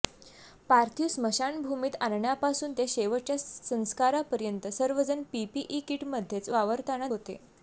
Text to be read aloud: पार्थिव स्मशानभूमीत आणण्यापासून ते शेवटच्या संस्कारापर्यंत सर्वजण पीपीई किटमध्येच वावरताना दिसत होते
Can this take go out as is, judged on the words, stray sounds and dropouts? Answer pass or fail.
fail